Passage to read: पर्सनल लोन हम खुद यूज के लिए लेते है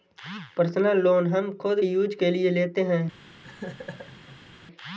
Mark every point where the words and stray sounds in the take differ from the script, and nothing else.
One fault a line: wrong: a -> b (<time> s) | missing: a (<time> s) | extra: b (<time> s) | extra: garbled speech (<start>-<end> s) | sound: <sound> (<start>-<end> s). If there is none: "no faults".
sound: laugh (3.4-4.6 s)